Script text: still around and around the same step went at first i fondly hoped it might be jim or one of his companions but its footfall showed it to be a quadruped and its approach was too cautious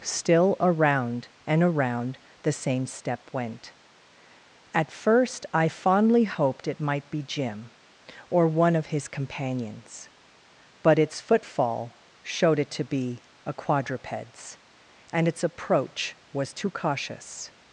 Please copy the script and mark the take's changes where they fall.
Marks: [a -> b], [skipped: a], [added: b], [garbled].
still around and around the same step went at first i fondly hoped it might be jim or one of his companions but its footfall showed it to be a [quadruped -> quadrupeds] and its approach was too cautious